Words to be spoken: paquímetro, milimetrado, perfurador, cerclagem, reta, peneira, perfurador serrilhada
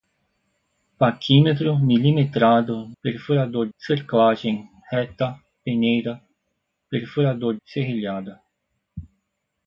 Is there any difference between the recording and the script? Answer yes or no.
no